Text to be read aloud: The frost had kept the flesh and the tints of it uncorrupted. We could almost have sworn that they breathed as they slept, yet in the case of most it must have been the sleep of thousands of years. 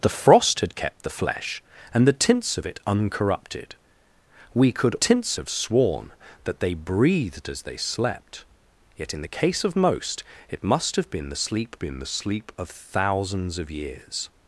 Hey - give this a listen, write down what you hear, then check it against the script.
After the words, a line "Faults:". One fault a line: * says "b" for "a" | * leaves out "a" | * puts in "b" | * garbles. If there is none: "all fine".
The frost had kept the flesh and the tints of it uncorrupted. We could tints have sworn that they breathed as they slept, yet in the case of most it must have been the sleep been the sleep of thousands of years.
Faults:
* says "tints" for "almost"
* puts in "been the sleep"